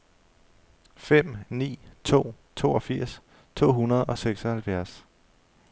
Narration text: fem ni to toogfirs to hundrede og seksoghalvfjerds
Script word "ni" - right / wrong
right